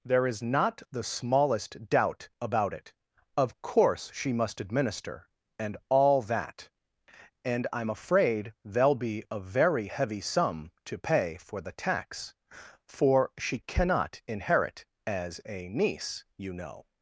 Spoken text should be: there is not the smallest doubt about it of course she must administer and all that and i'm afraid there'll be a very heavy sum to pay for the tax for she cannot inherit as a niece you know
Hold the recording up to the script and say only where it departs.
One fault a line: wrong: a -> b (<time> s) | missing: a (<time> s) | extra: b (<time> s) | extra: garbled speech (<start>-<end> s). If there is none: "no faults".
no faults